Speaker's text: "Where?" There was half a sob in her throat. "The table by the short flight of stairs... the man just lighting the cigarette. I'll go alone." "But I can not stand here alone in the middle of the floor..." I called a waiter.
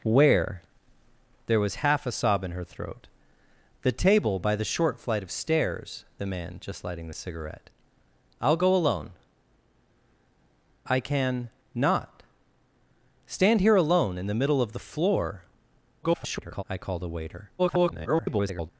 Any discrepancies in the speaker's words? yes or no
yes